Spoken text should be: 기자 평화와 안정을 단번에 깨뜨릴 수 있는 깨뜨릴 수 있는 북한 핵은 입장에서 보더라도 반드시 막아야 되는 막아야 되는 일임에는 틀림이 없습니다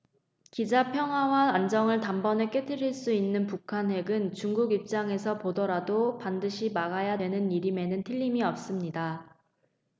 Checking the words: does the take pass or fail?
fail